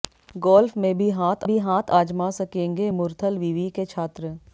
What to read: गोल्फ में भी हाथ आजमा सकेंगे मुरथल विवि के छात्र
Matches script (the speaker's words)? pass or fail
fail